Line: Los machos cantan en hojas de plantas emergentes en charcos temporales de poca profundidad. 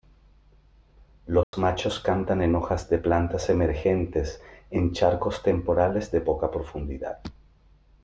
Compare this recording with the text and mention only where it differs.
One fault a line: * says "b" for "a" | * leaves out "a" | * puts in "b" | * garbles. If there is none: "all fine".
all fine